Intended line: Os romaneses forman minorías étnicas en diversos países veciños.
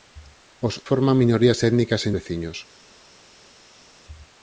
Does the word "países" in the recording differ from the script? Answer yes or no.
yes